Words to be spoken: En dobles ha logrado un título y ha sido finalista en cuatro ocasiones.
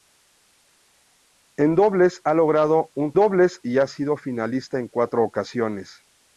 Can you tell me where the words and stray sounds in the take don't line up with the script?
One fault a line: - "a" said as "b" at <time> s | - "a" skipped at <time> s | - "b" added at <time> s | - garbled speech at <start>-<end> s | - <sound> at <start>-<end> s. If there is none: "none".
- "título" said as "dobles" at 3.1 s